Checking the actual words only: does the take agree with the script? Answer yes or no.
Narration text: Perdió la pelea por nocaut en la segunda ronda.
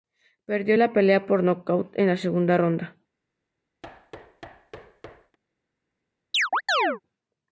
yes